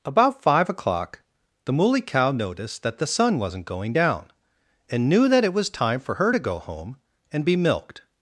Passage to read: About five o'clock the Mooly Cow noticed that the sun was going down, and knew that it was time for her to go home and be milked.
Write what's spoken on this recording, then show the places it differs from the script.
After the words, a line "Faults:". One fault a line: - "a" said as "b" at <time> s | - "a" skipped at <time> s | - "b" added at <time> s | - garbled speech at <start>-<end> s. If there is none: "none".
About five o'clock the Mooly Cow noticed that the sun wasn't going down, and knew that it was time for her to go home and be milked.
Faults:
- "was" said as "wasn't" at 3.4 s